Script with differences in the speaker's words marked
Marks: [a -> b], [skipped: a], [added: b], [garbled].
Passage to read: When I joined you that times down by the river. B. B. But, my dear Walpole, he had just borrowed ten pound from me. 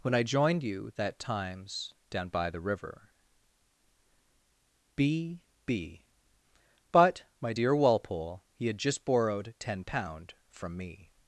When I joined you that times down by the river. B. B. But, my dear Walpole, he had just borrowed ten pound from me.